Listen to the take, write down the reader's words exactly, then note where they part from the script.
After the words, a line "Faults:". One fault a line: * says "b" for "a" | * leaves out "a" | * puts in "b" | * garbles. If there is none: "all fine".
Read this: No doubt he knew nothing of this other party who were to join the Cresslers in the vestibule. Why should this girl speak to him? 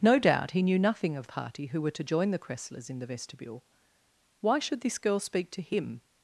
No doubt he knew nothing of party who were to join the Cresslers in the vestibule. Why should this girl speak to him?
Faults:
* leaves out "this other"